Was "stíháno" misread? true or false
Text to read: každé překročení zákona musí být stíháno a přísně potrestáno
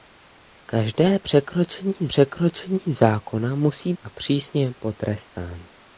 true